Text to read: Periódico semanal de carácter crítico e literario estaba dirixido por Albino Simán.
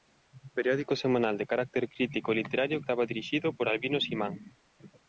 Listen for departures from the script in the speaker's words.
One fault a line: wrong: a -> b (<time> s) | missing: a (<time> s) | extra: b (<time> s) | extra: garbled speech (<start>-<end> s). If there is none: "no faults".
no faults